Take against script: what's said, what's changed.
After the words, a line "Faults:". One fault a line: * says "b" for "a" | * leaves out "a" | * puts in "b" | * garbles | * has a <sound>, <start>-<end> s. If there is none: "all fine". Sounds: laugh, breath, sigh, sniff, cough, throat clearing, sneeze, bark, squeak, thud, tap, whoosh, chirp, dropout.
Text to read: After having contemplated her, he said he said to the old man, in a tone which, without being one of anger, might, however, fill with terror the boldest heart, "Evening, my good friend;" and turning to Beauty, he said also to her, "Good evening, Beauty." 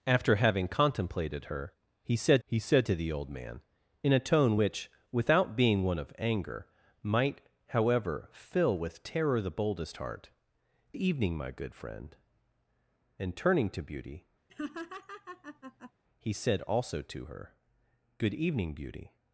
After having contemplated her, he said he said to the old man, in a tone which, without being one of anger, might, however, fill with terror the boldest heart, "Evening, my good friend;" and turning to Beauty, he said also to her, "Good evening, Beauty."
Faults:
* has a laugh, 14.5-15.9 s